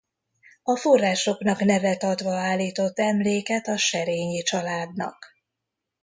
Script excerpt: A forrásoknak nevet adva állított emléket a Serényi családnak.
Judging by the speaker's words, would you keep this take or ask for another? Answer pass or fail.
pass